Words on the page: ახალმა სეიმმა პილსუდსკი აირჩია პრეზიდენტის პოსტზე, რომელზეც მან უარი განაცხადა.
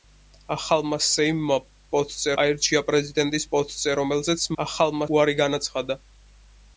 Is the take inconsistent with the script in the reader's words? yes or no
yes